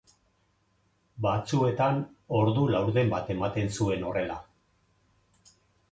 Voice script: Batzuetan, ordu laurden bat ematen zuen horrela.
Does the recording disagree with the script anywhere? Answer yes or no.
no